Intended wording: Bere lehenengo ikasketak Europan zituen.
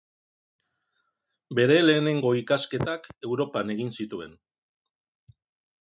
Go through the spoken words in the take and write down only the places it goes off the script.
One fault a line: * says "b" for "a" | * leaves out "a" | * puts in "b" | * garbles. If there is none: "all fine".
* puts in "egin"